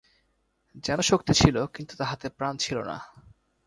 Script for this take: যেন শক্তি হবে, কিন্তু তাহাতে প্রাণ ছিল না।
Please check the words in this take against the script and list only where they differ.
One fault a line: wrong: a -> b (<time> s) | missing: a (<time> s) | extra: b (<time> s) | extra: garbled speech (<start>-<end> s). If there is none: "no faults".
wrong: হবে -> ছিল (1.3 s)